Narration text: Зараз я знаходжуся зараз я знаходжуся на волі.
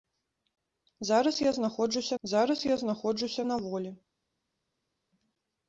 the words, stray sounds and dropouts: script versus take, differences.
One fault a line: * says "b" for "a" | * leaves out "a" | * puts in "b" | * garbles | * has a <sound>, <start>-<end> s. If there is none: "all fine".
all fine